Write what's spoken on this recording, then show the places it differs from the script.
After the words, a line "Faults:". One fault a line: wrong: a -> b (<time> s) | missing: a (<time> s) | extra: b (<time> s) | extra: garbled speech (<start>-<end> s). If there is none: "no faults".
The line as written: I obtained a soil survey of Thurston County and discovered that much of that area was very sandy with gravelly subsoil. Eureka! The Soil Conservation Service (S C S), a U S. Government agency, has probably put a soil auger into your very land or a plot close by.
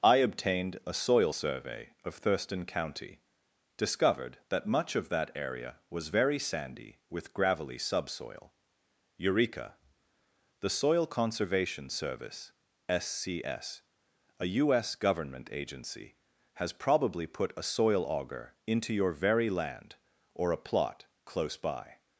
I obtained a soil survey of Thurston County discovered that much of that area was very sandy with gravelly subsoil. Eureka! The Soil Conservation Service (S C S), a U S. Government agency, has probably put a soil auger into your very land or a plot close by.
Faults:
missing: and (3.2 s)